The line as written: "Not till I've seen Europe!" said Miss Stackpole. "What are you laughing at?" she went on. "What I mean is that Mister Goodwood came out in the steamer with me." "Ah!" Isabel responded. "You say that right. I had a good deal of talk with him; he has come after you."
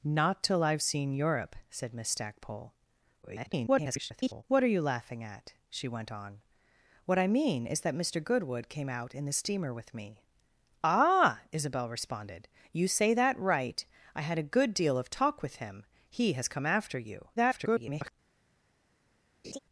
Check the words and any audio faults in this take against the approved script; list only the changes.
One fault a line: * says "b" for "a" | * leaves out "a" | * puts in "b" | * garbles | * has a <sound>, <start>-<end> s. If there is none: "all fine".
* garbles
* garbles
* has a laugh, 19.4-19.6 s